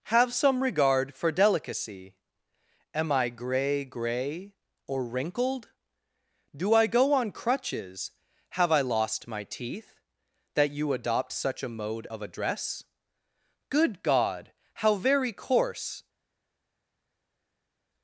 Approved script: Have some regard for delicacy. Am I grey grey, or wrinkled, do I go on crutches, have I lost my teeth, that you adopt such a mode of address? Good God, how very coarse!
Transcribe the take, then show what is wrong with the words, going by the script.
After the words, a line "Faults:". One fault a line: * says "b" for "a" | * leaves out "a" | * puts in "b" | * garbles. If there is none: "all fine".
Have some regard for delicacy. Am I grey grey, or wrinkled, do I go on crutches, have I lost my teeth, that you adopt such a mode of address? Good God, how very coarse!
Faults:
all fine